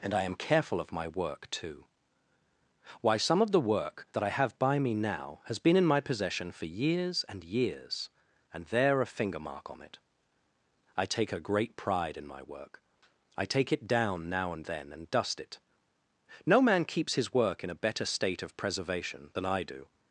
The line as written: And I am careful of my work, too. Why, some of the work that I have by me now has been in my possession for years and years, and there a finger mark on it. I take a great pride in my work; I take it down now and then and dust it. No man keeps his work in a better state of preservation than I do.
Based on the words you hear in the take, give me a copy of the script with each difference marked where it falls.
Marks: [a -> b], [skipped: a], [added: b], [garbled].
And I am careful of my work, too. Why, some of the work that I have by me now has been in my possession for years and years, and there a finger mark on it. I take a great pride in my work; I take it down now and then and dust it. No man keeps his work in a better state of preservation than I do.